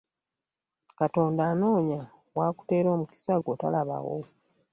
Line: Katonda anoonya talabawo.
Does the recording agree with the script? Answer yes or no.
no